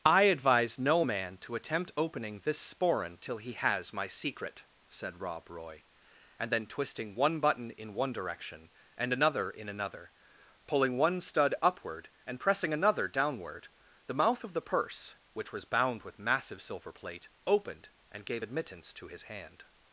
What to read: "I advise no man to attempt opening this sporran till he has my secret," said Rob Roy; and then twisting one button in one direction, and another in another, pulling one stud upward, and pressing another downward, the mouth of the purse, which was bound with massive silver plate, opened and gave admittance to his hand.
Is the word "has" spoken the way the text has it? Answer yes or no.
yes